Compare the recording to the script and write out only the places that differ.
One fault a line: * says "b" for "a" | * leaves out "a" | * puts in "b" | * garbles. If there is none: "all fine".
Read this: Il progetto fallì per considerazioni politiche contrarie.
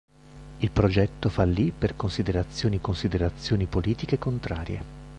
* puts in "considerazioni"